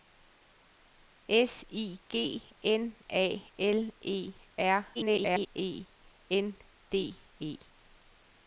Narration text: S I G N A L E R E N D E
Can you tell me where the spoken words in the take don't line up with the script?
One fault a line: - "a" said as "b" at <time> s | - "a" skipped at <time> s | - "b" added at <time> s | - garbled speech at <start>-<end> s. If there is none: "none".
- garbled speech at 4.9-5.5 s